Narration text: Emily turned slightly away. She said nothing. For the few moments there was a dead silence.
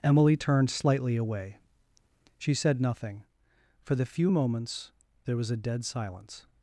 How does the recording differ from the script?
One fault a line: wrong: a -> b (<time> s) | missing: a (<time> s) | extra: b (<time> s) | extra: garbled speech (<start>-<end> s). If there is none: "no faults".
no faults